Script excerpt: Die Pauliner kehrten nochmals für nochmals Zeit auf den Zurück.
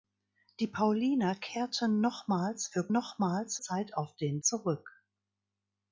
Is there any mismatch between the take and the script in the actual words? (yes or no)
no